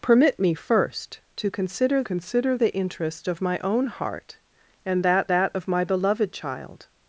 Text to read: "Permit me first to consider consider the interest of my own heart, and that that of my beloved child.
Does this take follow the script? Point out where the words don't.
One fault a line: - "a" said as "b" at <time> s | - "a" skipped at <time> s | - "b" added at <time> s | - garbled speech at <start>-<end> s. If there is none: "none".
none